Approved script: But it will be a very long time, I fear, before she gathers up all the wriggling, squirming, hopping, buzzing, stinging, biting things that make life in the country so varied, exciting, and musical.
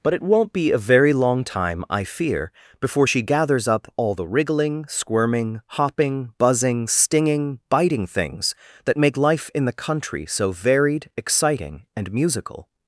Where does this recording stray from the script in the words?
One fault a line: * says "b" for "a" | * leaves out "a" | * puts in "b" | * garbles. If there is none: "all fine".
* says "won't" for "will"